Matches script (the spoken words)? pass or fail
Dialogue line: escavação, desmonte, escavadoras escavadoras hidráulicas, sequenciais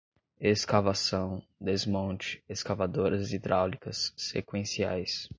fail